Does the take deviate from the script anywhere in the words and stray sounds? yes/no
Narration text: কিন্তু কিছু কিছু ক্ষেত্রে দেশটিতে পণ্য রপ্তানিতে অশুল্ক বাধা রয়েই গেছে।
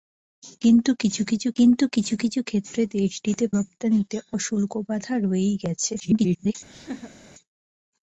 yes